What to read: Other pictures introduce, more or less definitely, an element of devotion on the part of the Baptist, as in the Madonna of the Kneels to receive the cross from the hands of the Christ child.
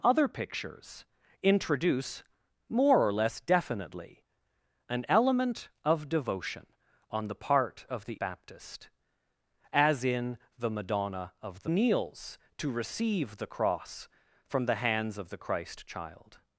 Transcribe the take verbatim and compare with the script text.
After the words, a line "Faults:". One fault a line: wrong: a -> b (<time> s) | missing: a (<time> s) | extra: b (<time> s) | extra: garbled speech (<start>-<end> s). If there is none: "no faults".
Other pictures introduce, more or less definitely, an element of devotion on the part of the Baptist, as in the Madonna of the Kneels to receive the cross from the hands of the Christ child.
Faults:
no faults